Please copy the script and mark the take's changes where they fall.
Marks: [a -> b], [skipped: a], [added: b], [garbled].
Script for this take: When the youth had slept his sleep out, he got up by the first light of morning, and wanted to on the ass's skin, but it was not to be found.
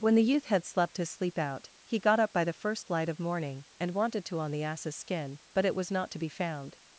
When the youth had slept his sleep out, he got up by the first light of morning, and wanted to on the ass's skin, but it was not to be found.